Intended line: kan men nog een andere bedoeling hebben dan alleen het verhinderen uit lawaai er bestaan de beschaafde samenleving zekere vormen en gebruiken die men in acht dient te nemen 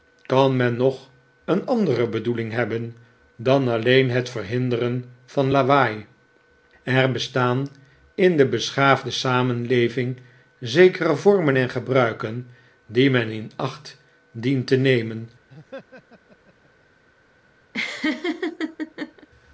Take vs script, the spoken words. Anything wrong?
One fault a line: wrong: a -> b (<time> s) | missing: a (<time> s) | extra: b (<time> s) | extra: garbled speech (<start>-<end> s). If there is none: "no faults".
wrong: uit -> van (5.2 s)
extra: in (8.1 s)